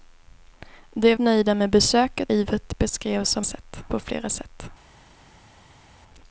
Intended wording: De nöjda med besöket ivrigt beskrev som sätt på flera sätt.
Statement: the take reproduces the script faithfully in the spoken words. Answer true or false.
true